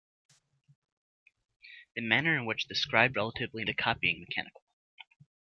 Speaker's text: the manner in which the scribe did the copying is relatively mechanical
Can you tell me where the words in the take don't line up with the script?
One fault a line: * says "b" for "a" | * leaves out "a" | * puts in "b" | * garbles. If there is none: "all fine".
* says "relatively" for "did"
* leaves out "is relatively"